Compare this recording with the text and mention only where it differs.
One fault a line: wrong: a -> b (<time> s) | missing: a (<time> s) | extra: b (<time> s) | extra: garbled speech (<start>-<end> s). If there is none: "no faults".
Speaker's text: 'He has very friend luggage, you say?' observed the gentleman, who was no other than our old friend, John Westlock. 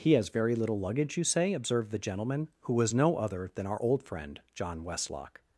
wrong: friend -> little (0.6 s)